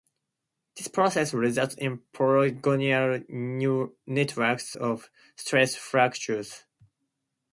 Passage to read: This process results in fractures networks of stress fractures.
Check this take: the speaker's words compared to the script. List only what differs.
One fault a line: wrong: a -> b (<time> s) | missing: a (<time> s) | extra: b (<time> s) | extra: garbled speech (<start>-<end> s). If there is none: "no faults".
wrong: fractures -> polygonal (2.1 s)